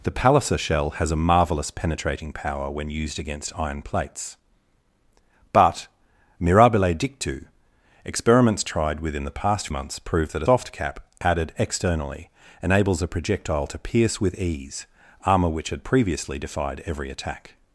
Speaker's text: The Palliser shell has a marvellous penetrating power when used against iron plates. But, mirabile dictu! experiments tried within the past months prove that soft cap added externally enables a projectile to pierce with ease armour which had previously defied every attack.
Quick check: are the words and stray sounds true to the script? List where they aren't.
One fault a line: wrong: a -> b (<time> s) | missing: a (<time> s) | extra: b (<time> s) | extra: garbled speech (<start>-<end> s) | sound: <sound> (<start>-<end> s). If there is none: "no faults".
no faults